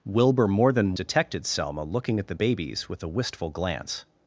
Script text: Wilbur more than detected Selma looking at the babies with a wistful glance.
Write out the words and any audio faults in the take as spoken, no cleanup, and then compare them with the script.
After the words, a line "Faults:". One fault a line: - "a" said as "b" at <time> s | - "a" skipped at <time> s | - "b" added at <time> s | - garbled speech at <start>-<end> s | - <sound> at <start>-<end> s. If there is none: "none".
Wilbur more than detected Selma looking at the babies with a wistful glance.
Faults:
none